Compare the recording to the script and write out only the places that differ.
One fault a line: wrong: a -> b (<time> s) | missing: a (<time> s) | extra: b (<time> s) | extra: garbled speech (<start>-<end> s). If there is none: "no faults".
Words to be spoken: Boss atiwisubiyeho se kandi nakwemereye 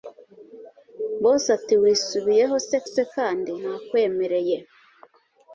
extra: se (2.9 s)